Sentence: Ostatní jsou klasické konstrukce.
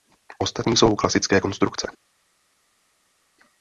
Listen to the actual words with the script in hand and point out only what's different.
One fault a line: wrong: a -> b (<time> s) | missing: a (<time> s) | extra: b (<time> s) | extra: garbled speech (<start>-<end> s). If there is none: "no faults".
no faults